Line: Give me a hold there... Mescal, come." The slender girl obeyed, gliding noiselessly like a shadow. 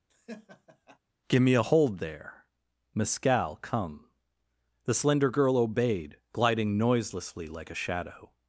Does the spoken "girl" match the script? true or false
true